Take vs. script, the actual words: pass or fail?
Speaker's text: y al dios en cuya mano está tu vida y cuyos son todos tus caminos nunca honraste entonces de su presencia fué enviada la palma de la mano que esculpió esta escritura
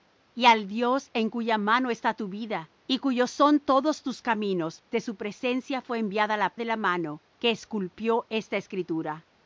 fail